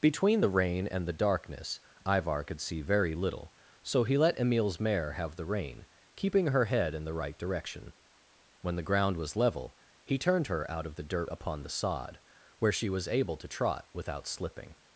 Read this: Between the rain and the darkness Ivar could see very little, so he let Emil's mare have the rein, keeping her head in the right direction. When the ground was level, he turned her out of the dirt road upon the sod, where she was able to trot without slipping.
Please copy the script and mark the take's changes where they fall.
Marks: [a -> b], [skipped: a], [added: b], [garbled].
Between the rain and the darkness Ivar could see very little, so he let Emil's mare have the rein, keeping her head in the right direction. When the ground was level, he turned her out of the dirt [skipped: road] upon the sod, where she was able to trot without slipping.